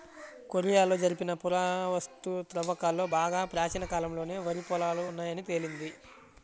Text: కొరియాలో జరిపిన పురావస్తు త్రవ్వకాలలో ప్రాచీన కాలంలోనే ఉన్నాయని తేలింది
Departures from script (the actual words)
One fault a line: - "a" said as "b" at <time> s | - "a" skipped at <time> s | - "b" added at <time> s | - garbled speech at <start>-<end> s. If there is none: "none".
- "బాగా" added at 3.1 s
- "వరి పొలాలు" added at 4.5 s